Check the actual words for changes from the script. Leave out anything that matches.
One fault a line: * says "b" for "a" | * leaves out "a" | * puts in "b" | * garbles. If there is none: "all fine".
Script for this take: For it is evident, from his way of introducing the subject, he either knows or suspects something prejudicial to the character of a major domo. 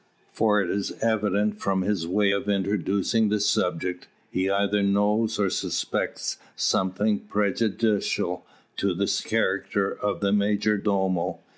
* says "the" for "a"